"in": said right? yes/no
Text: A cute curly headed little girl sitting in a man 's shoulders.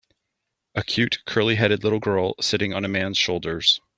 no